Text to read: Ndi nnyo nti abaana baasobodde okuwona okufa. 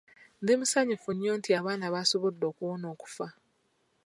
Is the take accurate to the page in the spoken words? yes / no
no